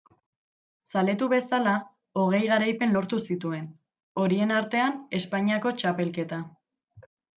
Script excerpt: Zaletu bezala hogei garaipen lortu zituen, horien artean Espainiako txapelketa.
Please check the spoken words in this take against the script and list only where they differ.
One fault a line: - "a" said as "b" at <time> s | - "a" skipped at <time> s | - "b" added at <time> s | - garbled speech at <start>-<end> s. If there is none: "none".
none